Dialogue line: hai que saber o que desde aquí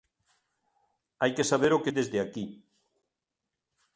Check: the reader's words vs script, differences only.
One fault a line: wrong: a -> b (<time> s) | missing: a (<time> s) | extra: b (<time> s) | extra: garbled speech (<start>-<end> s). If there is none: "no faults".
no faults